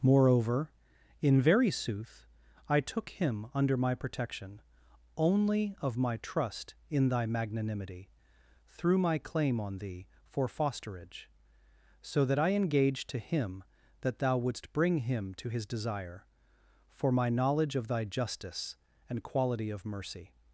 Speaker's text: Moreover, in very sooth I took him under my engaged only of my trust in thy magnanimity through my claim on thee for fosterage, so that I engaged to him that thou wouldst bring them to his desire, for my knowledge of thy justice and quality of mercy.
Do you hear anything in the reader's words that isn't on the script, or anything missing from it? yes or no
yes